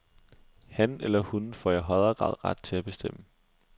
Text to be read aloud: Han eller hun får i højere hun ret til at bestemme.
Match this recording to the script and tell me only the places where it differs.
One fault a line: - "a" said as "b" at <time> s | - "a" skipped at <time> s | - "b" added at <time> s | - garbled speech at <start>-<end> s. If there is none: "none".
- "hun" said as "grad" at 2.1 s